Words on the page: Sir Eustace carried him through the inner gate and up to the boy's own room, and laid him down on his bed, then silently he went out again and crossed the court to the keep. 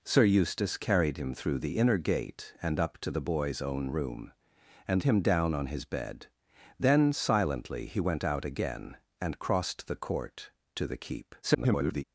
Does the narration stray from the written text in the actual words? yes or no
yes